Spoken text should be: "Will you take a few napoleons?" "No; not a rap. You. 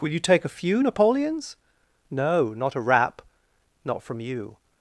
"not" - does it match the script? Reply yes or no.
yes